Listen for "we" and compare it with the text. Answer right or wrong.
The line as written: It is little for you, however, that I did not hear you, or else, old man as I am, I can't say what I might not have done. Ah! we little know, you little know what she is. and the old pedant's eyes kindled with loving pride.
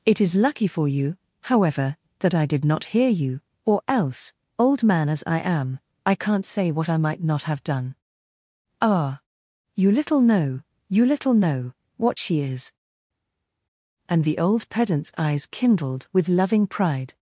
wrong